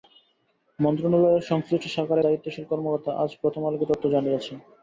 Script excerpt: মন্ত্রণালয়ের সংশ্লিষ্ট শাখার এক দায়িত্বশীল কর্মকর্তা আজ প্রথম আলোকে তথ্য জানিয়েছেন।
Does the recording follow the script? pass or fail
fail